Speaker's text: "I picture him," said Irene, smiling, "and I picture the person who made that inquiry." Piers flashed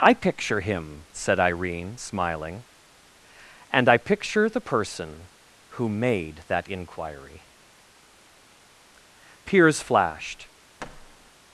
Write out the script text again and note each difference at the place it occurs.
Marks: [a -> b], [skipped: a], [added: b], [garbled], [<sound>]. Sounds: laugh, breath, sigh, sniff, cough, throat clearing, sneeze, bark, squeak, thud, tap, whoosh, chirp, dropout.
"I picture him," said Irene, smiling, "and I picture the person who made that inquiry." Piers flashed [thud]